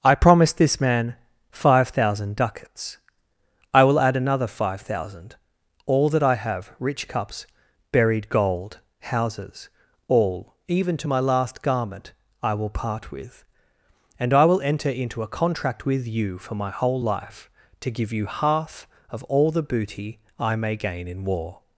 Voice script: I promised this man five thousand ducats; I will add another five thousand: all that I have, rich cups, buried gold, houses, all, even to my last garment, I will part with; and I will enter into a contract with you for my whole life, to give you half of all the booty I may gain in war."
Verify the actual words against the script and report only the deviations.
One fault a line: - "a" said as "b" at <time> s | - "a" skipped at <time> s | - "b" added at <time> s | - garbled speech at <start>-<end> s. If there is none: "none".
none